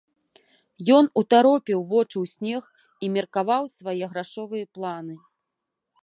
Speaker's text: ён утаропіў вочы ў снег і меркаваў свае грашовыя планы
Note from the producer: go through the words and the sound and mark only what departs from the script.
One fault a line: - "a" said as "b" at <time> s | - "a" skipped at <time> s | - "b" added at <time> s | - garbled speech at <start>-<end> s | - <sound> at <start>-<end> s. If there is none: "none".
none